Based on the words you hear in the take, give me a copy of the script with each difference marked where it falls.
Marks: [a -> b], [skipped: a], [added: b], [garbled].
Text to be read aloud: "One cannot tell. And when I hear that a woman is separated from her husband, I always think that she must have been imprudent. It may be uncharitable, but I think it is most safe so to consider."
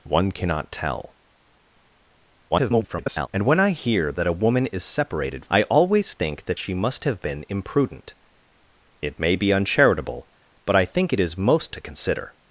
"One cannot tell. [garbled] And when I hear that a woman is separated [skipped: from her husband,] I always think that she must have been imprudent. It may be uncharitable, but I think it is most [skipped: safe so] to consider."